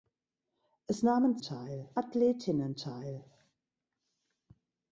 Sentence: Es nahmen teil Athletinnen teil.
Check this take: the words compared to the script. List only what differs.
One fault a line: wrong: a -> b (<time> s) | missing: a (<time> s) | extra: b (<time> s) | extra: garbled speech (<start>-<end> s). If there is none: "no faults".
no faults